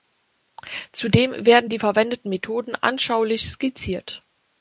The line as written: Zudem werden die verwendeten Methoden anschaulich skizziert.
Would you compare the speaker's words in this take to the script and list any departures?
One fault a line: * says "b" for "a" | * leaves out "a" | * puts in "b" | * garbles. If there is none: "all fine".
all fine